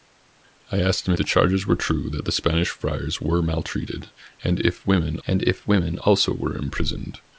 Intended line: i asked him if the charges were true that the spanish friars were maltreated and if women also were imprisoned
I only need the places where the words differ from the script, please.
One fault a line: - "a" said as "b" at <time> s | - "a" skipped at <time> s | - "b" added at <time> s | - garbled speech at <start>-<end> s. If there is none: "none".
- "if" skipped at 1.1 s
- "and if women" added at 5.2 s